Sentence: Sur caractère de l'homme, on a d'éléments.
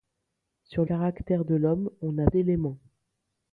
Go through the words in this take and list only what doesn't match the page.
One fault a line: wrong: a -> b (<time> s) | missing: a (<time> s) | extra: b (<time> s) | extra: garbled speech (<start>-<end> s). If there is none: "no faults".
no faults